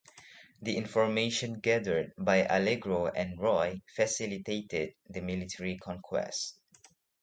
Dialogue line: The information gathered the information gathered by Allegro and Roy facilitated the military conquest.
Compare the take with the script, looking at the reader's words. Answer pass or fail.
fail